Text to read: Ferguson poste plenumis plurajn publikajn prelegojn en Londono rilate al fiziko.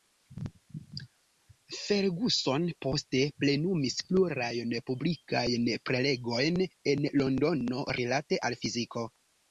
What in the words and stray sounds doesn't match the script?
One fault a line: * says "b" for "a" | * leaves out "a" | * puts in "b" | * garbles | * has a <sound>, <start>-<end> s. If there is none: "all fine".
all fine